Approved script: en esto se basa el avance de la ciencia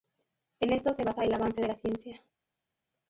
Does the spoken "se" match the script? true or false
true